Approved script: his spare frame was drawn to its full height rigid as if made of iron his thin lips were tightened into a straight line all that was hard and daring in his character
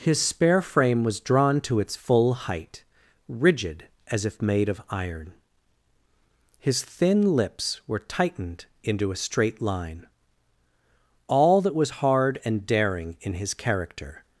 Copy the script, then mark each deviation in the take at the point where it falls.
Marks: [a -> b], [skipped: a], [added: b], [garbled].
his spare frame was drawn to its full height rigid as if made of iron his thin lips were tightened into a straight line all that was hard and daring in his character